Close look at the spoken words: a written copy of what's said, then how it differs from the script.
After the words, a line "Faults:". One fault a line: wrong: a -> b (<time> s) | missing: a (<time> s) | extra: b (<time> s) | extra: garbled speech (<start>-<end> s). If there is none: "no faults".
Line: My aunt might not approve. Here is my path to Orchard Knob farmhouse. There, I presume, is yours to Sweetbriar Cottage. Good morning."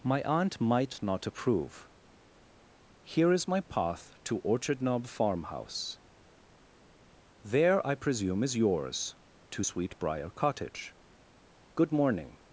My aunt might not approve. Here is my path to Orchard Knob farmhouse. There, I presume, is yours to Sweetbriar Cottage. Good morning."
Faults:
no faults